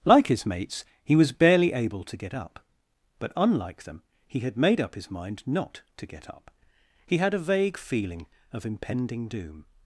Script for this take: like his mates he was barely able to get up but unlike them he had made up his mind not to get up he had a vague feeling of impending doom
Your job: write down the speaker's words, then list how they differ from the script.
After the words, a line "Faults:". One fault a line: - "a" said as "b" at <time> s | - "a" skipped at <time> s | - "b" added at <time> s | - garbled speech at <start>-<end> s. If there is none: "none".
like his mates he was barely able to get up but unlike them he had made up his mind not to get up he had a vague feeling of impending doom
Faults:
none